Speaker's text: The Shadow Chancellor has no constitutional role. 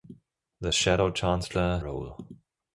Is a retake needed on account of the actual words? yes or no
yes